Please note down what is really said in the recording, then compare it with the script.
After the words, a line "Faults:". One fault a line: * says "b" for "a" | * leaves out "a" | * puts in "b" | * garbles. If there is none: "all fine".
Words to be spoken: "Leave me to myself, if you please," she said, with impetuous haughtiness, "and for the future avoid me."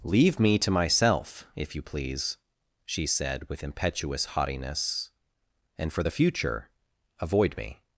"Leave me to myself, if you please," she said, with impetuous haughtiness, "and for the future avoid me."
Faults:
all fine